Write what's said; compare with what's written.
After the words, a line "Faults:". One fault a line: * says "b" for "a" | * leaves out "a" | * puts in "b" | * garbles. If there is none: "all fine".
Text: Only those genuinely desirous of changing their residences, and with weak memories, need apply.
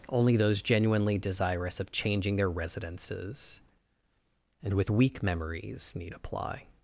Only those genuinely desirous of changing their residences, and with weak memories, need apply.
Faults:
all fine